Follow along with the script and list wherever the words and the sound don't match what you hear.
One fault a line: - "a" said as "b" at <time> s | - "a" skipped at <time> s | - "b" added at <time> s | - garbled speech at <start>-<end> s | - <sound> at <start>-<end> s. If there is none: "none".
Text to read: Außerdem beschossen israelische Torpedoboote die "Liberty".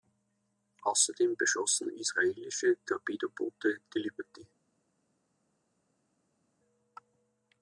none